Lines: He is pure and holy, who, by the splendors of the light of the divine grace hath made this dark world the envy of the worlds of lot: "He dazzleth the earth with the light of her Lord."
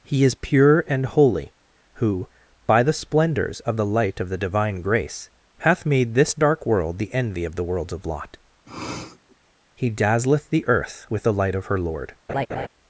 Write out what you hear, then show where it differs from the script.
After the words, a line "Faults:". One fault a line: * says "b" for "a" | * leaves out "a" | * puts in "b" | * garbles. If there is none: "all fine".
He is pure and holy, who, by the splendors of the light of the divine grace hath made this dark world the envy of the worlds of lot: "He dazzleth the earth with the light of her Lord."
Faults:
all fine